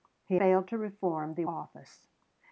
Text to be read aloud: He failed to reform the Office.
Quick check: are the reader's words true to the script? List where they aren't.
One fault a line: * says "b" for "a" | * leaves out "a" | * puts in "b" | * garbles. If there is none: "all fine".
all fine